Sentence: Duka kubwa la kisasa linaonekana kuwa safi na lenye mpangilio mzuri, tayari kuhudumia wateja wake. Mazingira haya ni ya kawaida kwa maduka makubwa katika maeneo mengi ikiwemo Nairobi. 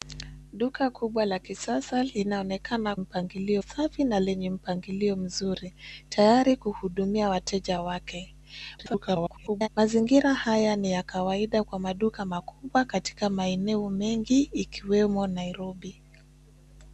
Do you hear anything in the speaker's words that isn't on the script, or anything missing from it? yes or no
yes